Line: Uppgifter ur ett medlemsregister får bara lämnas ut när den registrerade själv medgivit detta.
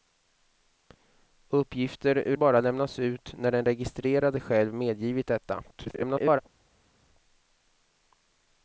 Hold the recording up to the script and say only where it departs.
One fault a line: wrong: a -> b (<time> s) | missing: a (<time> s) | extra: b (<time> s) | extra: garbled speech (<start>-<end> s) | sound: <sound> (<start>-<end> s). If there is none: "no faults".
missing: ett medlemsregister får (2.4 s)
extra: garbled speech (5.7-6.4 s)